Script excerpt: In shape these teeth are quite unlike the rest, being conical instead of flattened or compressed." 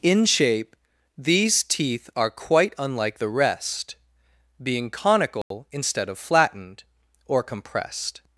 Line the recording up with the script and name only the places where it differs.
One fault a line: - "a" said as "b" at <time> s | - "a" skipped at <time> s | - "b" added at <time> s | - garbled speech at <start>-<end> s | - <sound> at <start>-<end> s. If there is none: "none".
- dropout at 5.4-5.5 s